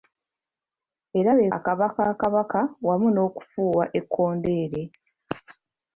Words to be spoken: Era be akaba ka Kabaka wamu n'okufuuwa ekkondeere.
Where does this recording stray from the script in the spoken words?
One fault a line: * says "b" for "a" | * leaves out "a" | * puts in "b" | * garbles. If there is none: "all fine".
all fine